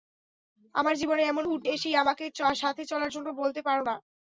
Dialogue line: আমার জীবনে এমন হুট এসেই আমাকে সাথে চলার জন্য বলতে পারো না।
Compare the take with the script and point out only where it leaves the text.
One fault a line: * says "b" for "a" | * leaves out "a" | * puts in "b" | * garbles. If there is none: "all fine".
all fine